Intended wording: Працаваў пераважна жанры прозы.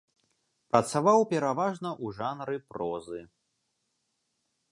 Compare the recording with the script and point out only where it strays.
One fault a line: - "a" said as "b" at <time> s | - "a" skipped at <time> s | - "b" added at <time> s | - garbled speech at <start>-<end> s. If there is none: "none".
- "ў" added at 2.0 s